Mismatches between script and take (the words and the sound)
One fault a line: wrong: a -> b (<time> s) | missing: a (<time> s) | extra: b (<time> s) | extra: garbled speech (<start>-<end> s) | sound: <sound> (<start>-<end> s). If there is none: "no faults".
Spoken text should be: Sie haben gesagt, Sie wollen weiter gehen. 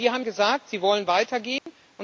sound: dropout (1.6-1.7 s)